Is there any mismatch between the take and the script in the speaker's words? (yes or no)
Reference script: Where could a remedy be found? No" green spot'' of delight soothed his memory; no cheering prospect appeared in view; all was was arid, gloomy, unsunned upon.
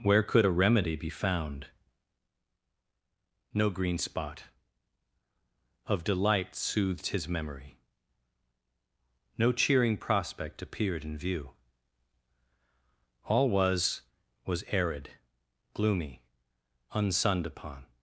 no